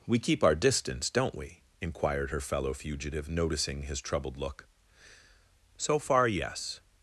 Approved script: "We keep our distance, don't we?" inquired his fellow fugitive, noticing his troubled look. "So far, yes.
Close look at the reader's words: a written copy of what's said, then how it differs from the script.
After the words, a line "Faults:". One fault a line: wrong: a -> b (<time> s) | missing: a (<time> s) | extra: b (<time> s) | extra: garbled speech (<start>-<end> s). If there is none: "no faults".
"We keep our distance, don't we?" inquired her fellow fugitive, noticing his troubled look. "So far, yes.
Faults:
wrong: his -> her (2.3 s)